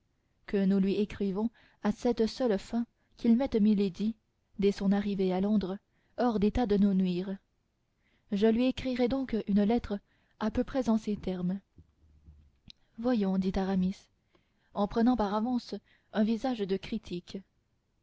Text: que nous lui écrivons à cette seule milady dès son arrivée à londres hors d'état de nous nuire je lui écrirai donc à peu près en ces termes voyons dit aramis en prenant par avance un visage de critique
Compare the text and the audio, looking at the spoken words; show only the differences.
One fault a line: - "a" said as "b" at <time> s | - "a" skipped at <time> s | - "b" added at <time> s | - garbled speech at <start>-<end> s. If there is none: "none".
- "fin qu'il mette" added at 2.6 s
- "une lettre" added at 9.5 s